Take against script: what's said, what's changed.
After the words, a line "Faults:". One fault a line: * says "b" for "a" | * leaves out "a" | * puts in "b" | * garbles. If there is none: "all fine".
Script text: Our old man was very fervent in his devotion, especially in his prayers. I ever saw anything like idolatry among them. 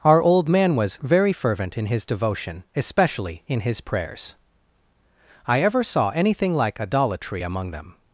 Our old man was very fervent in his devotion, especially in his prayers. I ever saw anything like idolatry among them.
Faults:
all fine